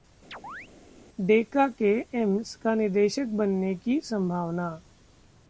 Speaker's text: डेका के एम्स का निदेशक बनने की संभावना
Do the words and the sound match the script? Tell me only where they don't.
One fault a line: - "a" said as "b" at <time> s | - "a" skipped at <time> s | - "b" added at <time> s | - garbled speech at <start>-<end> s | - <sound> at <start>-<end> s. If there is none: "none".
- chirp at 0.3-0.7 s